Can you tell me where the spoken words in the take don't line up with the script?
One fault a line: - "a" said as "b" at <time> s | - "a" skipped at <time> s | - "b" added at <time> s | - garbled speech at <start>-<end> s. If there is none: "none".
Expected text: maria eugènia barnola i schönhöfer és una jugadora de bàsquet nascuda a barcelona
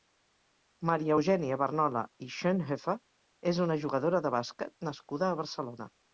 none